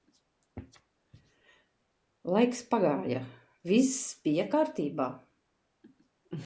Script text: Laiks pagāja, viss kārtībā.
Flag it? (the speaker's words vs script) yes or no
yes